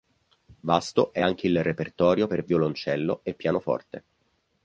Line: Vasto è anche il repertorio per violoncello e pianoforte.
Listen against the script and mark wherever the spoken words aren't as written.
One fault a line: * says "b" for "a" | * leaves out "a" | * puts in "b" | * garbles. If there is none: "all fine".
all fine